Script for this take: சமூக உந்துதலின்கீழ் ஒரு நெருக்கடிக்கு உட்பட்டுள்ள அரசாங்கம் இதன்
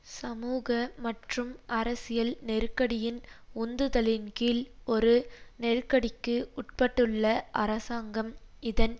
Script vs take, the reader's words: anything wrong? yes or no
yes